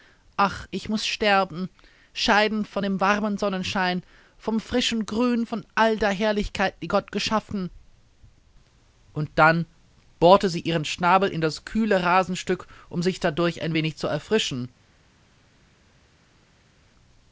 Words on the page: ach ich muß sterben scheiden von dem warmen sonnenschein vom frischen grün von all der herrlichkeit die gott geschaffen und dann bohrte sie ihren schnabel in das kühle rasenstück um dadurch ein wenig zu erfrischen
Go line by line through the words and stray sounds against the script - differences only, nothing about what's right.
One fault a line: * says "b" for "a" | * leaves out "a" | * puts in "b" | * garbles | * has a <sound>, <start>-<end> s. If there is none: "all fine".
* puts in "sich"